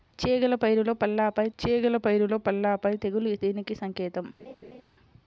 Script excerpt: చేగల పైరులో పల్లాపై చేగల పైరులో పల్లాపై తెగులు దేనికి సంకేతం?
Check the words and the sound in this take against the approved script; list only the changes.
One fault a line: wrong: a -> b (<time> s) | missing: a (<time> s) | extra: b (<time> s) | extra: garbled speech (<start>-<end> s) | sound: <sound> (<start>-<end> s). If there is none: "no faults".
sound: laugh (4.4-4.8 s)